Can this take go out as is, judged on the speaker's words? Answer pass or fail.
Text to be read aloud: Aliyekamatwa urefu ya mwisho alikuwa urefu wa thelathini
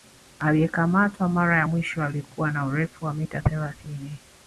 fail